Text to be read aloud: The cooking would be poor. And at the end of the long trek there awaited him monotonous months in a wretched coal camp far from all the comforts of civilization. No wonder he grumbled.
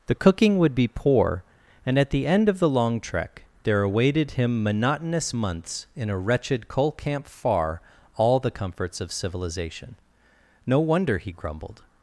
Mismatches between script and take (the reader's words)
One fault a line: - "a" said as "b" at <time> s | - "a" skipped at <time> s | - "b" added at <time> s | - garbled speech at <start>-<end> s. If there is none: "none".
- "from" skipped at 7.8 s